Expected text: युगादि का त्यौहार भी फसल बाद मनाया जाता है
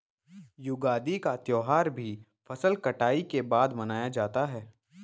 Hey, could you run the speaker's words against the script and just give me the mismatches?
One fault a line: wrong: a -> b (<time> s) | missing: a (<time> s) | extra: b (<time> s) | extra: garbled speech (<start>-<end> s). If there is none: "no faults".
extra: कटाई के (2.8 s)